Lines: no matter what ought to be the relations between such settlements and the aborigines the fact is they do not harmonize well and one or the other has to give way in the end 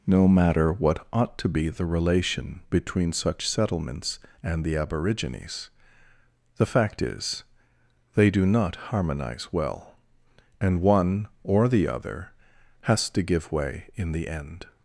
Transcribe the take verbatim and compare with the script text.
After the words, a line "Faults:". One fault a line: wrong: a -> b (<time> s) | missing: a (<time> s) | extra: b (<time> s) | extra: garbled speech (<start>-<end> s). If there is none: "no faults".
no matter what ought to be the relation between such settlements and the aborigines the fact is they do not harmonize well and one or the other has to give way in the end
Faults:
wrong: relations -> relation (1.9 s)